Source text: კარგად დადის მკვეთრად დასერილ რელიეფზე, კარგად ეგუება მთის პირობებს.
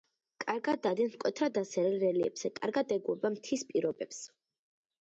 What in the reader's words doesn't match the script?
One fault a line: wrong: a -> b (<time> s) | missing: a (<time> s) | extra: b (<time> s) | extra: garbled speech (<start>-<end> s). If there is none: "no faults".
no faults